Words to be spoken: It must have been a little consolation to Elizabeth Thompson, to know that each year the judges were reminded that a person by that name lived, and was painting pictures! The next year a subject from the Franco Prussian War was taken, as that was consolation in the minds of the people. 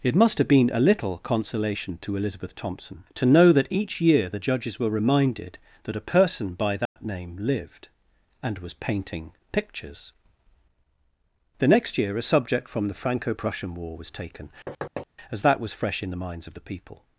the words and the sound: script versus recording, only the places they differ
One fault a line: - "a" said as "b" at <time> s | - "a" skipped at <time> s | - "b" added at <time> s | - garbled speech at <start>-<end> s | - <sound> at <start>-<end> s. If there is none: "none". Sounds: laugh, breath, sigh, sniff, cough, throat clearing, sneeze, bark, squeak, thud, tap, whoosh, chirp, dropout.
- dropout at 6.9-7.0 s
- thud at 14.7-15.1 s
- "consolation" said as "fresh" at 15.7 s